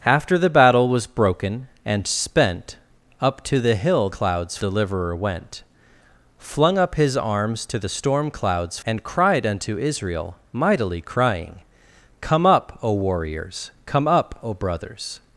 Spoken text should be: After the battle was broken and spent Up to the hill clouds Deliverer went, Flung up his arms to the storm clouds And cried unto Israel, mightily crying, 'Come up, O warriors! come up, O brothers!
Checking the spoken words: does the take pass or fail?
pass